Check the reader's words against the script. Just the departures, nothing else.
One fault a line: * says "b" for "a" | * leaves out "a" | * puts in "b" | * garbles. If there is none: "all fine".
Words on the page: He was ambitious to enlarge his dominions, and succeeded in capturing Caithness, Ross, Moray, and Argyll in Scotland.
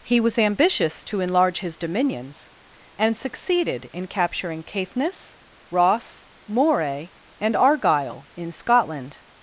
all fine